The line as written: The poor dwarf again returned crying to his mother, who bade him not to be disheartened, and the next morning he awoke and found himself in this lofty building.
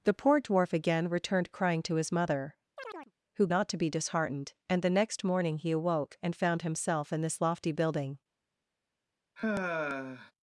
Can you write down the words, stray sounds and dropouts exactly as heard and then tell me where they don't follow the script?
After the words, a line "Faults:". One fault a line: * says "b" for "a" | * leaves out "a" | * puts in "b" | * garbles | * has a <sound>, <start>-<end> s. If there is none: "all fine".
The poor dwarf again returned crying to his mother, who not to be disheartened, and the next morning he awoke and found himself in this lofty building.
Faults:
* has a chirp, 2.8-3.1 s
* leaves out "bade him"
* has a sigh, 9.4-10.3 s